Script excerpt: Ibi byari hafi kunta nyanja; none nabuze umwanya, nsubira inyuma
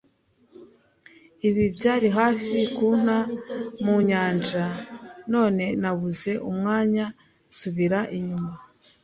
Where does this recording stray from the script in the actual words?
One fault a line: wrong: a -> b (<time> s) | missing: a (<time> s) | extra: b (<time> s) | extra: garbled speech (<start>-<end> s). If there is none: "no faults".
extra: mu (3.8 s)